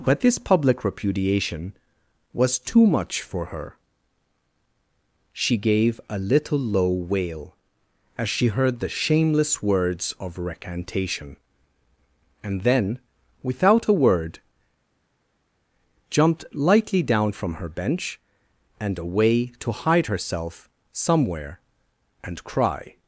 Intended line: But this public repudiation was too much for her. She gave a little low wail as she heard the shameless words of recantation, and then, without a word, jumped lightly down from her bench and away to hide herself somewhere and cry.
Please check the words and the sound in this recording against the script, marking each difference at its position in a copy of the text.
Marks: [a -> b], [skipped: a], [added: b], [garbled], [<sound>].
But this public repudiation was too much for her. She gave a little low wail as she heard the shameless words of recantation, and then, without a word, jumped lightly down from her bench and away to hide herself somewhere and cry.